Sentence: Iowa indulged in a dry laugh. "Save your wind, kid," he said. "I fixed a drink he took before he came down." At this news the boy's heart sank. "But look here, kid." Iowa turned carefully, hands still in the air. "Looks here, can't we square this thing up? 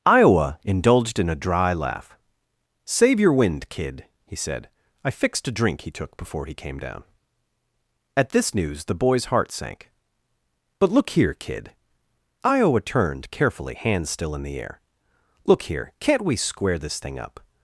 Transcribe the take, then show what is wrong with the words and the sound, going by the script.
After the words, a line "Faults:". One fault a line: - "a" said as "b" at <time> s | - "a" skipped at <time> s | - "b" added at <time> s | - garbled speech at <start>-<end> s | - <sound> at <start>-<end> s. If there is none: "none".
Iowa indulged in a dry laugh. "Save your wind, kid," he said. "I fixed a drink he took before he came down." At this news the boy's heart sank. "But look here, kid." Iowa turned carefully, hands still in the air. "Look here, can't we square this thing up?
Faults:
- "Looks" said as "Look" at 15.4 s